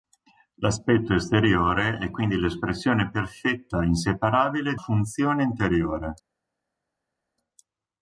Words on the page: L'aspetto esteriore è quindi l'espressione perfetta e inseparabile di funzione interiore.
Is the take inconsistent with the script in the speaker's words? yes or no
no